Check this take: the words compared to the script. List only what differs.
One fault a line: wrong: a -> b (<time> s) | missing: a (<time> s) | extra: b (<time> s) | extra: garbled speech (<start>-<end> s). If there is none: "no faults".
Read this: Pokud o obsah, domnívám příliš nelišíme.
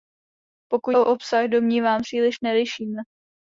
no faults